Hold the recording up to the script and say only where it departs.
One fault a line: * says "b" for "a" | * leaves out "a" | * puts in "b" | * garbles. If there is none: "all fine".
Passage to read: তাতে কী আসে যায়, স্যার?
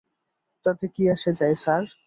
all fine